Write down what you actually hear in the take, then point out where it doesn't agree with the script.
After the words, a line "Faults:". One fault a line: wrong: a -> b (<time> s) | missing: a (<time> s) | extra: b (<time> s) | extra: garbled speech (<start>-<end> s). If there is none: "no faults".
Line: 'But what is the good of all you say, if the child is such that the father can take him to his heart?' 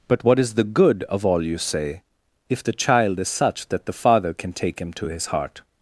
'But what is the good of all you say, if the child is such that the father can take him to his heart?'
Faults:
no faults